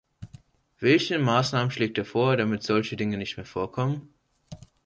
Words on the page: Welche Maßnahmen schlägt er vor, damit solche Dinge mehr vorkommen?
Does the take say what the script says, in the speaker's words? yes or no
no